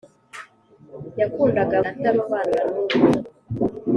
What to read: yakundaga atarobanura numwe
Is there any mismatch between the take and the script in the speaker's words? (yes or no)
no